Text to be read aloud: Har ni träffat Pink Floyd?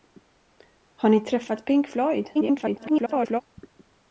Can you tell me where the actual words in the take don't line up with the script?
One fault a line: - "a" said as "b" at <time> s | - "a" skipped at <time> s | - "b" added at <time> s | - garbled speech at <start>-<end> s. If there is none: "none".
- garbled speech at 2.3-3.4 s